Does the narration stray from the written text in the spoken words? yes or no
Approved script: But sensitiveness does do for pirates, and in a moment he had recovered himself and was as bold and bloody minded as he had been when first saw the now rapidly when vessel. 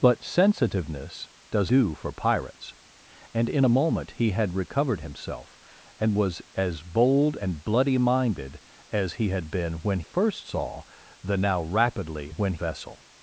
no